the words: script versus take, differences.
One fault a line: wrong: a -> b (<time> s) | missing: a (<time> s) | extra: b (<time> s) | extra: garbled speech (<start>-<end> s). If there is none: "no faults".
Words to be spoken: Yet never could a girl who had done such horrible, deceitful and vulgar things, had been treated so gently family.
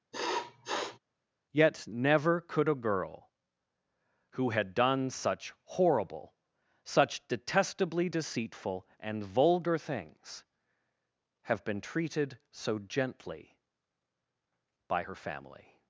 extra: such detestably (6.8 s)
wrong: had -> have (11.4 s)
extra: by her (14.9 s)